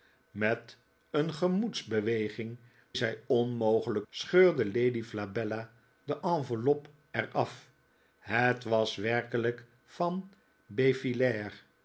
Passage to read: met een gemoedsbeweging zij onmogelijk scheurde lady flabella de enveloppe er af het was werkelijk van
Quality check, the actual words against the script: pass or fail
pass